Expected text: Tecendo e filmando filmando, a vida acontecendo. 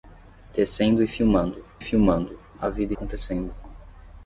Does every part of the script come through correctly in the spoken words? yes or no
yes